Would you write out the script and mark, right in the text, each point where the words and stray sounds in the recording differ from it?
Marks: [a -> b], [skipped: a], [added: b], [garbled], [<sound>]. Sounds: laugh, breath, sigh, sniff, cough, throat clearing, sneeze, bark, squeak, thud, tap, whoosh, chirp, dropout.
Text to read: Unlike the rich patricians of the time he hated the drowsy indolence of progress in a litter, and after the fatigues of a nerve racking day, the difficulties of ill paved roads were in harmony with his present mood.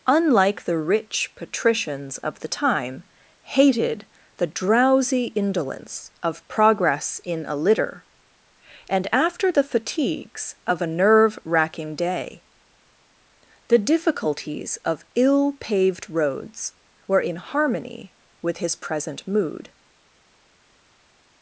Unlike the rich patricians of the time [skipped: he] hated the drowsy indolence of progress in a litter, and after the fatigues of a nerve racking day, the difficulties of ill paved roads were in harmony with his present mood.